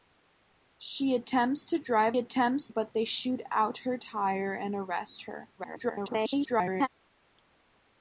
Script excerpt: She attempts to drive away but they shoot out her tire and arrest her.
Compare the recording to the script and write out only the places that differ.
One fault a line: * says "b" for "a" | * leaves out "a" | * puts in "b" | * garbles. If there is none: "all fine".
* says "attempts" for "away"
* garbles